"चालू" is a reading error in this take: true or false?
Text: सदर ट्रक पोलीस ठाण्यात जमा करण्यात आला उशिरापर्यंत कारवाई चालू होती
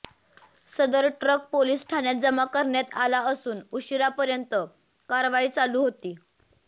false